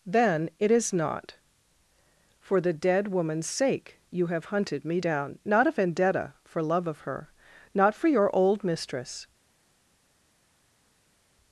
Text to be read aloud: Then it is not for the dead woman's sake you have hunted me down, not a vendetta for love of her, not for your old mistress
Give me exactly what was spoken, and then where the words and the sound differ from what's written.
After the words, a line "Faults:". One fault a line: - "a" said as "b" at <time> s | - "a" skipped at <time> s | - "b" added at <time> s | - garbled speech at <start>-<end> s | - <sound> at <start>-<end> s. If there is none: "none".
Then it is not for the dead woman's sake you have hunted me down, not a vendetta for love of her, not for your old mistress
Faults:
none